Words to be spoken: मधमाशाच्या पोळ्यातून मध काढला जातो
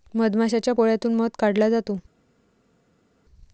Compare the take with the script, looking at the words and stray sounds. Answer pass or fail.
pass